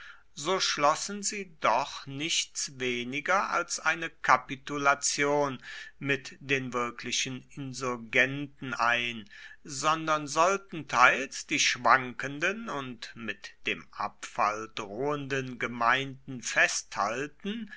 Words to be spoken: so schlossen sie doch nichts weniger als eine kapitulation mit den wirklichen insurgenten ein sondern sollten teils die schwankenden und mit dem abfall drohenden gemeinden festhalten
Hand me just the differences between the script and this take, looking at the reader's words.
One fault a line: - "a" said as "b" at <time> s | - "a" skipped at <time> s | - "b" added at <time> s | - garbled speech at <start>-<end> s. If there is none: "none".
none